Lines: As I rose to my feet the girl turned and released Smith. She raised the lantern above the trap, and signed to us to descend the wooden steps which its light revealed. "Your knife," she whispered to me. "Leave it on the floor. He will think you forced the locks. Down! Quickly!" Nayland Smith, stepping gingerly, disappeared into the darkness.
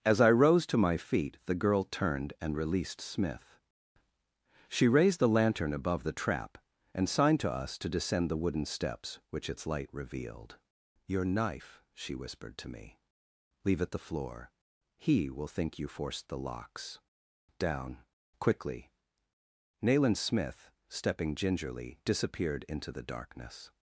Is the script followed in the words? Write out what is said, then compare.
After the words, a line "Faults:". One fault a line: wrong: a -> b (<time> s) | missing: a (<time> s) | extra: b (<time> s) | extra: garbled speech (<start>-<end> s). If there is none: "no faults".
As I rose to my feet the girl turned and released Smith. She raised the lantern above the trap, and signed to us to descend the wooden steps which its light revealed. "Your knife," she whispered to me. "Leave it the floor. He will think you forced the locks. Down! Quickly!" Nayland Smith, stepping gingerly, disappeared into the darkness.
Faults:
missing: on (13.9 s)